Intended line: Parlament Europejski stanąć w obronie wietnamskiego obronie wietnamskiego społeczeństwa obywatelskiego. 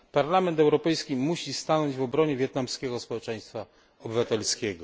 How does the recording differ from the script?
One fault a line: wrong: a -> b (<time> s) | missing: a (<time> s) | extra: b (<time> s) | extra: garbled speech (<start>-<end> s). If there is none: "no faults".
extra: musi (1.1 s)
missing: obronie wietnamskiego (3.0 s)